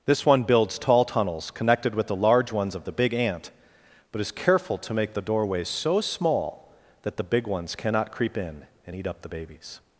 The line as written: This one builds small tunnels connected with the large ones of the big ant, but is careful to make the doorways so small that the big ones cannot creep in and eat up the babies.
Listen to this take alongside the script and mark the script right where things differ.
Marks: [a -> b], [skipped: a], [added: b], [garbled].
This one builds [small -> tall] tunnels connected with the large ones of the big ant, but is careful to make the doorways so small that the big ones cannot creep in and eat up the babies.